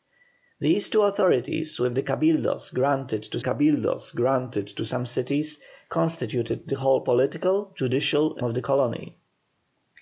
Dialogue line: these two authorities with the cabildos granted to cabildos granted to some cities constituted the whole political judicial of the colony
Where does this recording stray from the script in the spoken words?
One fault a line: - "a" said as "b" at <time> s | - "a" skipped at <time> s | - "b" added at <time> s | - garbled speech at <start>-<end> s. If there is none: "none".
none